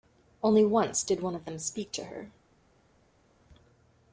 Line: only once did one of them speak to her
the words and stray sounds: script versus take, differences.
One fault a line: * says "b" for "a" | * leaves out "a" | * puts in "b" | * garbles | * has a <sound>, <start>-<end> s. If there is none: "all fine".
all fine